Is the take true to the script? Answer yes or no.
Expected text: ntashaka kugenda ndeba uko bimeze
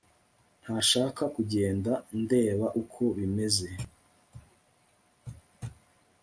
yes